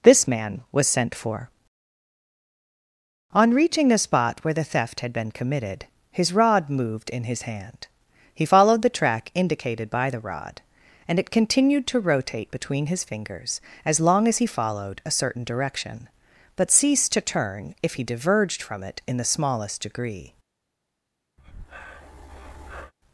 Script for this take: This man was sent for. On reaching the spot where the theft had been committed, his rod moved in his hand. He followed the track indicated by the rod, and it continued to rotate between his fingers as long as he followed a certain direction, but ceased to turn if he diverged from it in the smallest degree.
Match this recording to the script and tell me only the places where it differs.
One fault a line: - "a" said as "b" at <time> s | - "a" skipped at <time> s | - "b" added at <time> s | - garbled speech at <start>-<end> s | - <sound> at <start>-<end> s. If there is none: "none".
- breath at 21.4-22.9 s